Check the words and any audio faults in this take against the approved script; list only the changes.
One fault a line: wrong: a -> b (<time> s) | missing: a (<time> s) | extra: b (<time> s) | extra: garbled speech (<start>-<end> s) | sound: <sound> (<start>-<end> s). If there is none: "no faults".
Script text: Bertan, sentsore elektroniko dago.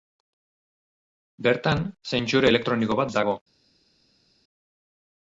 extra: bat (3.0 s)